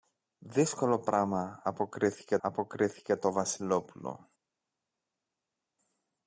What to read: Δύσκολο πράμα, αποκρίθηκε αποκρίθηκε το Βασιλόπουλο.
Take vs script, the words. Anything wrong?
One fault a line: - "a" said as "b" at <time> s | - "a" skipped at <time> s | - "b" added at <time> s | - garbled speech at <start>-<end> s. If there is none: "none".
none